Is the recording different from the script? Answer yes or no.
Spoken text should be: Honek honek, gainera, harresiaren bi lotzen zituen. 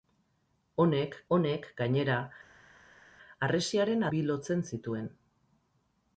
no